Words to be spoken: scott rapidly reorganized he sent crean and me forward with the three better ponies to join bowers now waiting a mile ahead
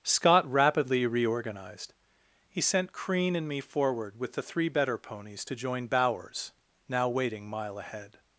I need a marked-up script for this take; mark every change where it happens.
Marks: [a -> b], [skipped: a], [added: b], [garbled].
scott rapidly reorganized he sent crean and me forward with the three better ponies to join bowers now waiting [skipped: a] mile ahead